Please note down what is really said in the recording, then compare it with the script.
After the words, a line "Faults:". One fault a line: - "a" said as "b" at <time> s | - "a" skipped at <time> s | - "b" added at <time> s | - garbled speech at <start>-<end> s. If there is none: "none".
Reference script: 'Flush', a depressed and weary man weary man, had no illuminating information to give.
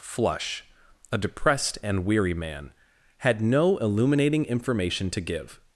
'Flush', a depressed and weary man, had no illuminating information to give.
Faults:
- "weary man" skipped at 2.7 s